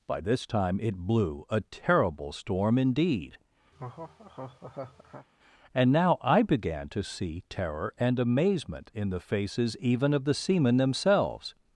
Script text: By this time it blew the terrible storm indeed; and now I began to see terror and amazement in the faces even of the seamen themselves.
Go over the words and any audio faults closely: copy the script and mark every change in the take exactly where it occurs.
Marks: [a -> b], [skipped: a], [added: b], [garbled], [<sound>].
By this time it blew [the -> a] terrible storm indeed; [laugh] and now I began to see terror and amazement in the faces even of the seamen themselves.